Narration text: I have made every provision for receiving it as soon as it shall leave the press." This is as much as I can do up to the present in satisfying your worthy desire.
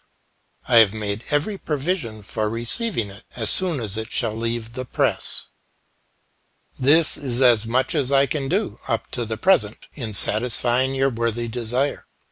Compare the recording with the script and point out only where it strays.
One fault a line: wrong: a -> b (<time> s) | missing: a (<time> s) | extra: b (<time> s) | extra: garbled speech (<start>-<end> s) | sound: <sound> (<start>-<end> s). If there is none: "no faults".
no faults